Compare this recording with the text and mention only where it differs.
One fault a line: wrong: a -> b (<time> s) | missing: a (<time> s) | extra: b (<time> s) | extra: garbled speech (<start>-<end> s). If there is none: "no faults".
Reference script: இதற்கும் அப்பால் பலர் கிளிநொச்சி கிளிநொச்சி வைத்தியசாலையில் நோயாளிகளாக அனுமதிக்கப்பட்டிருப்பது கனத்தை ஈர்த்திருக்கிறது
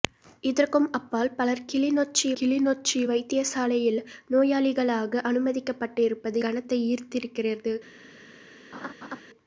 no faults